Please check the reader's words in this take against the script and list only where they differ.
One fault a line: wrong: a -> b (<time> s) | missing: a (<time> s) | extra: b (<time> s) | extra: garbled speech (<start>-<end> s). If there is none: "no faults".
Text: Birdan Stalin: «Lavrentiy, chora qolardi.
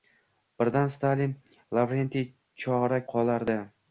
no faults